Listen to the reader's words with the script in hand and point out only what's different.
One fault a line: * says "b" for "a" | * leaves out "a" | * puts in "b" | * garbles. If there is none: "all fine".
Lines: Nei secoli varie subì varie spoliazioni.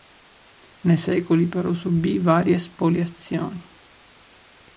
* says "però" for "varie"